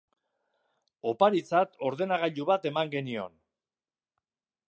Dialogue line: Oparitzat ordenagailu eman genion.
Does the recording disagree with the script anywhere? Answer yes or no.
yes